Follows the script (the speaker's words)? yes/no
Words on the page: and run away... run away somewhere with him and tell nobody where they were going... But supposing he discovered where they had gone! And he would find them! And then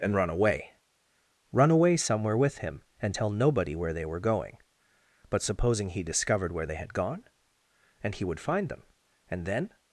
yes